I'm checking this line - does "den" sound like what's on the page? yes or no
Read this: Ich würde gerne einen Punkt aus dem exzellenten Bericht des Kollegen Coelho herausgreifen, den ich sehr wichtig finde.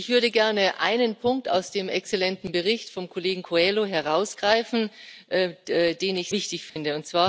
yes